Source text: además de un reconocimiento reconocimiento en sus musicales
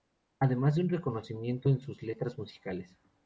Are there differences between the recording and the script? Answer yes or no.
yes